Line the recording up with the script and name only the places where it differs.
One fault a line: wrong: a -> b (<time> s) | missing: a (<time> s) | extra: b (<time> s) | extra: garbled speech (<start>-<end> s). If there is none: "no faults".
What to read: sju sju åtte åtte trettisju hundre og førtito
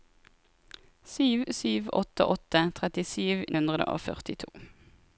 no faults